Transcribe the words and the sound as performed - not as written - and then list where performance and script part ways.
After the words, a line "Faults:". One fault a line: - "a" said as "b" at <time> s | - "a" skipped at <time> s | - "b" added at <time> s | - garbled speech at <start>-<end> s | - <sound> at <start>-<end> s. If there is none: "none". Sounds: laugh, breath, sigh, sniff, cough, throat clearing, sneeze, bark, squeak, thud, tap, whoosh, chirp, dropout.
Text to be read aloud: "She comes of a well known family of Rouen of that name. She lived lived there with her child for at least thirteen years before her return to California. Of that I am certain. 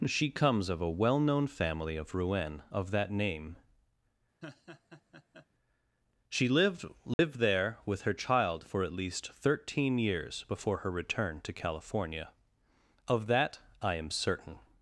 "She comes of a well known family of Rouen of that name. She lived lived there with her child for at least thirteen years before her return to California. Of that I am certain.
Faults:
- laugh at 4.4-5.5 s
- dropout at 7.1-7.2 s